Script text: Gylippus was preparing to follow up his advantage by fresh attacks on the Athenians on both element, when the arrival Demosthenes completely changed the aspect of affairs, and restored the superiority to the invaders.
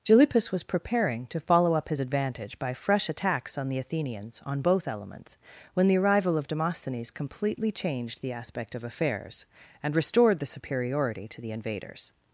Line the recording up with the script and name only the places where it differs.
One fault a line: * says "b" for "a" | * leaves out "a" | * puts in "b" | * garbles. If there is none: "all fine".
* says "elements" for "element"
* puts in "of"